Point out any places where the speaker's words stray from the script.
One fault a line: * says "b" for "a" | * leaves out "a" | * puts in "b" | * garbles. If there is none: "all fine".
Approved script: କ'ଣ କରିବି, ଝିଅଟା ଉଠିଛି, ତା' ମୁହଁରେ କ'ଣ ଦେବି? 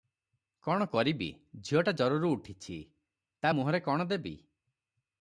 * puts in "ଜରରୁ"